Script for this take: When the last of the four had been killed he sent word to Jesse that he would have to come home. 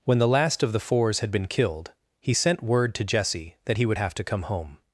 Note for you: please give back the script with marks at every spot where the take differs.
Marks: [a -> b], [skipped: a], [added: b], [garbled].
When the last of the [four -> fours] had been killed he sent word to Jesse that he would have to come home.